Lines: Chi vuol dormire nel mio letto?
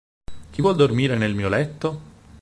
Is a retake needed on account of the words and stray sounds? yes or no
no